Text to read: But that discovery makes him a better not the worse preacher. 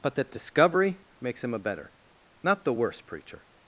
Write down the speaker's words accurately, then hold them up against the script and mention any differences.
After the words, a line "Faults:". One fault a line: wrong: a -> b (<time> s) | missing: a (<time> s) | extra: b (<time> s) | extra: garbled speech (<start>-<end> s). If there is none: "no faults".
But that discovery makes him a better not the worse preacher.
Faults:
no faults